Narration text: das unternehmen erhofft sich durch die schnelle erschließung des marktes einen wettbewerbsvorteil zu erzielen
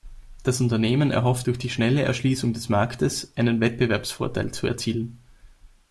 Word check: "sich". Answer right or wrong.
wrong